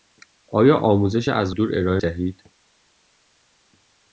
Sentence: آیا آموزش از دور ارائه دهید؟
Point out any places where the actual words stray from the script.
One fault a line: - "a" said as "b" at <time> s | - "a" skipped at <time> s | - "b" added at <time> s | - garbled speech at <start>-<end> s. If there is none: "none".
none